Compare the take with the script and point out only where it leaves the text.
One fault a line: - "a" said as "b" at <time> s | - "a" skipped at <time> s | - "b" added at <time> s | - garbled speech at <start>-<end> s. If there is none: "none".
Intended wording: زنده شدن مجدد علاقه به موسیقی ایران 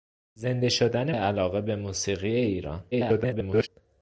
- "مجدد" skipped at 1.1 s
- garbled speech at 2.9-3.7 s